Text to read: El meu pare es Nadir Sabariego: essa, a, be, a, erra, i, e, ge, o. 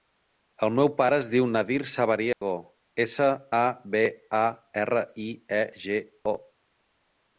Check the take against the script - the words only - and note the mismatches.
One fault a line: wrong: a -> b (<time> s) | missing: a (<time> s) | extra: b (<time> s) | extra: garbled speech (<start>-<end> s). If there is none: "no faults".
extra: diu (1.3 s)